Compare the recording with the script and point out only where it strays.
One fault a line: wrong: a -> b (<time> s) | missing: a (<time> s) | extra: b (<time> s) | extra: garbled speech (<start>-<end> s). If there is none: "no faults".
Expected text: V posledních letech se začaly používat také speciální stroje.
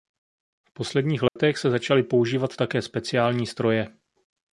no faults